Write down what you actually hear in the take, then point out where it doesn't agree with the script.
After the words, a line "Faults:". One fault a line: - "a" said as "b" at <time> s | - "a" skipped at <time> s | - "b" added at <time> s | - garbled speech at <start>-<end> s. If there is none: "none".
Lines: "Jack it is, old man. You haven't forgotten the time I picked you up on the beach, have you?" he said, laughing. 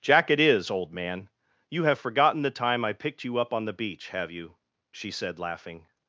"Jack it is, old man. You have forgotten the time I picked you up on the beach, have you?" she said, laughing.
Faults:
- "haven't" said as "have" at 1.8 s
- "he" said as "she" at 4.9 s